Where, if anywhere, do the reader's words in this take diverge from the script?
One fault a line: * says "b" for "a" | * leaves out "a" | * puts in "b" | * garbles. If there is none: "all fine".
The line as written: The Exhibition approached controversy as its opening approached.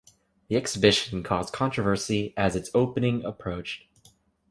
* says "caused" for "approached"